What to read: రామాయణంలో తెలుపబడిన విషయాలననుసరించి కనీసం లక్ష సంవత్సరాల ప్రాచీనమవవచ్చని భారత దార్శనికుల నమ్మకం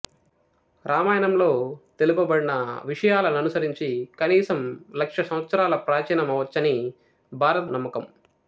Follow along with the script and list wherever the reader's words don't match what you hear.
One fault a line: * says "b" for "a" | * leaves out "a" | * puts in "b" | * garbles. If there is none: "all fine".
* leaves out "దార్శనికుల"